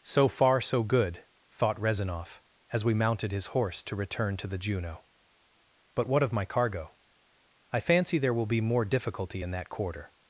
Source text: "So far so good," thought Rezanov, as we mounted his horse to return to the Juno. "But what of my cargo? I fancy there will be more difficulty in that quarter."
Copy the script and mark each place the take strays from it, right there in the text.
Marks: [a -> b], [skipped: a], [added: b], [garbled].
"So far so good," thought Rezanov, as we mounted his horse to return to the Juno. "But what of my cargo? I fancy there will be more difficulty in that quarter."